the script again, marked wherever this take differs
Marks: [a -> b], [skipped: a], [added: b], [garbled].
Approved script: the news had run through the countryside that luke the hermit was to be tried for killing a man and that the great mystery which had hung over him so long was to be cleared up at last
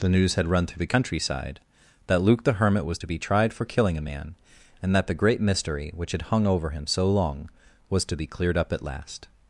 the news had run through the countryside that luke the hermit was to be tried for killing a man and that the great mystery which had hung over him so long was to be cleared up at last